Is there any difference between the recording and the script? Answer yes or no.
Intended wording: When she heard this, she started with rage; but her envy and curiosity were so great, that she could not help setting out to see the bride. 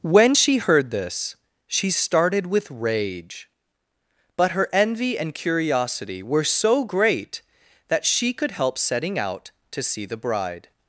yes